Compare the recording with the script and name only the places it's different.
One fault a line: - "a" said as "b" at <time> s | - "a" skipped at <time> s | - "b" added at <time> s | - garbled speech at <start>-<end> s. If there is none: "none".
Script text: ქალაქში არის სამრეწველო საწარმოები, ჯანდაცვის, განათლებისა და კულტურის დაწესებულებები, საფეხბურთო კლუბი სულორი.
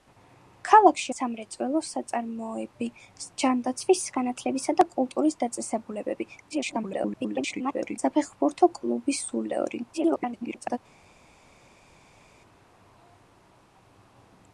- "არის" skipped at 1.1 s
- garbled speech at 6.5-8.0 s
- garbled speech at 9.9-10.8 s